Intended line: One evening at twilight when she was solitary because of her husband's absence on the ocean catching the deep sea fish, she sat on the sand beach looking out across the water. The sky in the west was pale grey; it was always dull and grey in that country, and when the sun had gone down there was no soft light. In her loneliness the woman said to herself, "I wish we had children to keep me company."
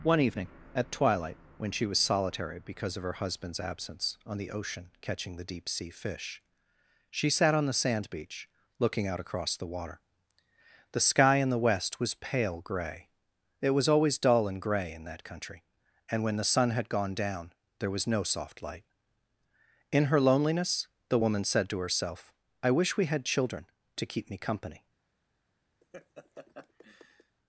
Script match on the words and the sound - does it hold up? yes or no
no